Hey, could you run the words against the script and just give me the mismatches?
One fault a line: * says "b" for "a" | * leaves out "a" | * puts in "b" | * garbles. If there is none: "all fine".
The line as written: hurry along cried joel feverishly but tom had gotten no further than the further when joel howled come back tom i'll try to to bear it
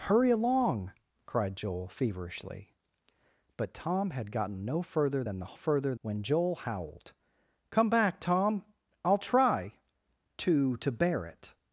all fine